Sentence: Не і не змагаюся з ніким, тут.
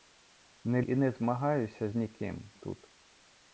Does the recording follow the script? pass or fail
pass